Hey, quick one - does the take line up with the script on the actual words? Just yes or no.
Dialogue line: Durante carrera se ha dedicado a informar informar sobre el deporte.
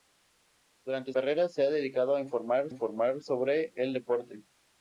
yes